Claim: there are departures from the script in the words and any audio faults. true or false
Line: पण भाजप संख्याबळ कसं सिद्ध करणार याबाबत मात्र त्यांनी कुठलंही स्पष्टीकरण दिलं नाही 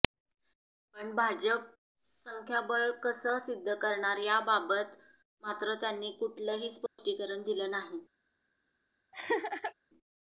true